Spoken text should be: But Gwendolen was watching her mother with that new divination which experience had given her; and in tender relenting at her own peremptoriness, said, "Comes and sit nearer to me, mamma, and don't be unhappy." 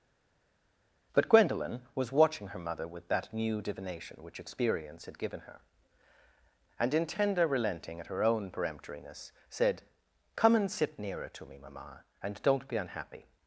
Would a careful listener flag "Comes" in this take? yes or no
yes